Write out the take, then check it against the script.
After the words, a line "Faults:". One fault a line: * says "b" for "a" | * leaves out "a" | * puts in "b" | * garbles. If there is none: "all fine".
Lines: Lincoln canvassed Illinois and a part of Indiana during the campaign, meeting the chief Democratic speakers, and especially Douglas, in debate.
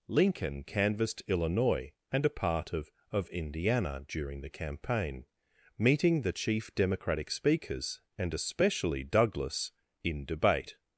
Lincoln canvassed Illinois and a part of of Indiana during the campaign, meeting the chief Democratic speakers, and especially Douglas, in debate.
Faults:
* puts in "of"